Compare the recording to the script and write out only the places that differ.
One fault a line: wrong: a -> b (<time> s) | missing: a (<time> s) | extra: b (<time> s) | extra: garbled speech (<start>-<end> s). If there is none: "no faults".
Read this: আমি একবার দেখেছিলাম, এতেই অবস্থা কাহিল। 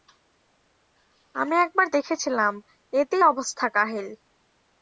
no faults